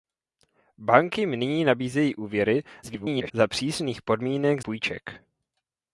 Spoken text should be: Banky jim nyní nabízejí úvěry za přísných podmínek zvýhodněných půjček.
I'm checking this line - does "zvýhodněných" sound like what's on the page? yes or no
no